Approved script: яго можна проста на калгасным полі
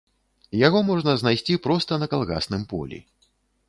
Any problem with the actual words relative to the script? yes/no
yes